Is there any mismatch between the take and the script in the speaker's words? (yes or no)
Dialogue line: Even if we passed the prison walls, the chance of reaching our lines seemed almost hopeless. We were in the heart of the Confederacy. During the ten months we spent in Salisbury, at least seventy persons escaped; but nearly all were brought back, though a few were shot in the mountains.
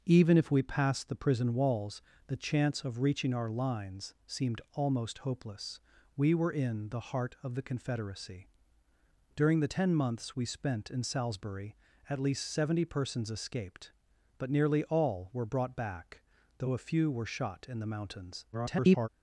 yes